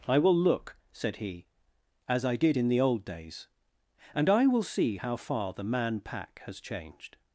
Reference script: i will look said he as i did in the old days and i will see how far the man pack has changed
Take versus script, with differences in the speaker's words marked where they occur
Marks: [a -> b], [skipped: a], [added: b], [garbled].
i will look said he as i did in the old days and i will see how far the man pack has changed